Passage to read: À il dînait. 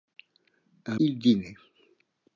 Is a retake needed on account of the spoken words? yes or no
no